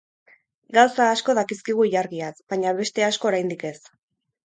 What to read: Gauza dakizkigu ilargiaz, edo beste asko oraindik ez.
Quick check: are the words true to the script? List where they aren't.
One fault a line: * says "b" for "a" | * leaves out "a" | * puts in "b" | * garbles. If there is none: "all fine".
* puts in "asko"
* says "baina" for "edo"